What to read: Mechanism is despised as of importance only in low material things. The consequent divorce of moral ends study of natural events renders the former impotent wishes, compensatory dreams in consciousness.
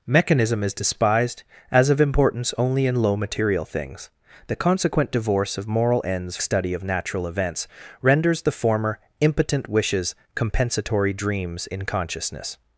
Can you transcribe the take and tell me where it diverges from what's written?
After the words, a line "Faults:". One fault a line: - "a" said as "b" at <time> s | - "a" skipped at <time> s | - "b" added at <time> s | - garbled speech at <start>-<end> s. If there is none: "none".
Mechanism is despised as of importance only in low material things. The consequent divorce of moral ends study of natural events renders the former impotent wishes, compensatory dreams in consciousness.
Faults:
none